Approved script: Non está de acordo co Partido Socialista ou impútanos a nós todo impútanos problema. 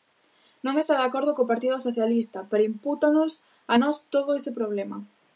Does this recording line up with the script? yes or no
no